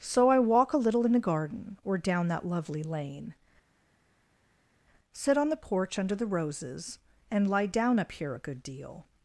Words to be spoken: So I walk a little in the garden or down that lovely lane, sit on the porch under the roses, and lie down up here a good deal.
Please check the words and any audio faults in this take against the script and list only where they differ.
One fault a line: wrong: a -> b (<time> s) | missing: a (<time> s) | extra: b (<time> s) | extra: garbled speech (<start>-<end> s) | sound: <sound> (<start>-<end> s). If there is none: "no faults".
no faults